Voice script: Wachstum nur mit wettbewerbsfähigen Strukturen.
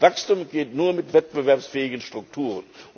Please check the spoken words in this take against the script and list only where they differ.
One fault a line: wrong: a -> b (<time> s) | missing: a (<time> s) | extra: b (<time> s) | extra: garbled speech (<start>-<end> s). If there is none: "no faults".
extra: geht (0.5 s)